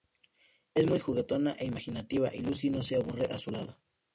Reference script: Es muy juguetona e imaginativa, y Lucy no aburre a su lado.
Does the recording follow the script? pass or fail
fail